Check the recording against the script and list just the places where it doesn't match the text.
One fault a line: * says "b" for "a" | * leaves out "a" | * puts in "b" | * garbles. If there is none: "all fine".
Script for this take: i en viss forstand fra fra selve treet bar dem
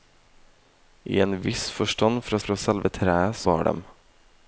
all fine